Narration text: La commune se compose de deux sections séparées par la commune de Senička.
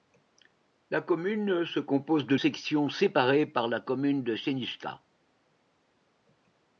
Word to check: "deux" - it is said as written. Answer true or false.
false